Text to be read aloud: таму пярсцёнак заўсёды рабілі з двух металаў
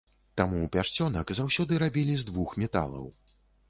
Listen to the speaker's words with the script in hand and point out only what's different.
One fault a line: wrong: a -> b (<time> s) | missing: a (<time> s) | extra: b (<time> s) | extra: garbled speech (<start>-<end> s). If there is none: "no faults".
no faults